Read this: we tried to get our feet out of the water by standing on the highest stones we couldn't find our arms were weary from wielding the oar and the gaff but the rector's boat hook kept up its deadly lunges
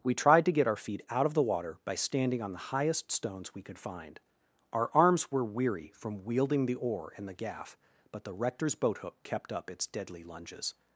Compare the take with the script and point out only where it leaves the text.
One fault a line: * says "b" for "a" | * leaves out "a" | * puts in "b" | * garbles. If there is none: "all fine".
* says "could" for "couldn't"